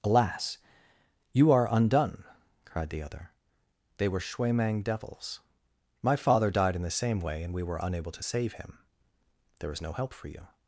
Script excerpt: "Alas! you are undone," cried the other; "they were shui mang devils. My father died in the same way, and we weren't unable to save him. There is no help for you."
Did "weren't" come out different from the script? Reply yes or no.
yes